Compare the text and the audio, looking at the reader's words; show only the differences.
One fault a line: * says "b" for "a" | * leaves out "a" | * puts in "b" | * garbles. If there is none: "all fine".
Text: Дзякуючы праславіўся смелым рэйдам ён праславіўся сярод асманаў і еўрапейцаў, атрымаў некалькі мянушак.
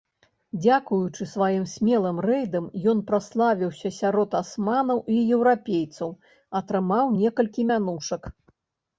* says "сваім" for "праславіўся"